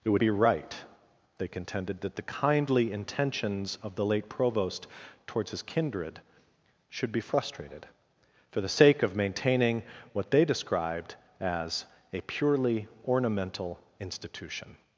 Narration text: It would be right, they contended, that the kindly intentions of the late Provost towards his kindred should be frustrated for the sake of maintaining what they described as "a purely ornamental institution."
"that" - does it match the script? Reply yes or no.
yes